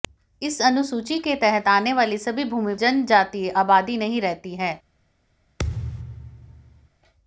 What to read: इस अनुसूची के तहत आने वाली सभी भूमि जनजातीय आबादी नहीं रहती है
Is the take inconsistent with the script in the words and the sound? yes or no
yes